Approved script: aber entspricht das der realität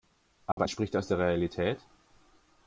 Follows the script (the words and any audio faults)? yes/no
no